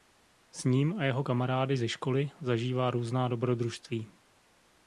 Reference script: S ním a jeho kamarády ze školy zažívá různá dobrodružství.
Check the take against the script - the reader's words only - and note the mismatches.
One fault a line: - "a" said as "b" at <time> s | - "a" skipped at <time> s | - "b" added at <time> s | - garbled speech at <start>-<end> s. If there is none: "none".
none